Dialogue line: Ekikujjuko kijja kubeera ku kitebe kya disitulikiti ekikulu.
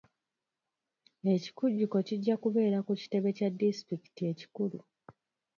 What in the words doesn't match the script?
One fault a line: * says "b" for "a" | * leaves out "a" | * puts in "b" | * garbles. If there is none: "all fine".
all fine